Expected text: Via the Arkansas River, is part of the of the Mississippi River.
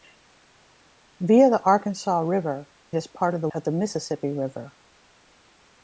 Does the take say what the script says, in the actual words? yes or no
yes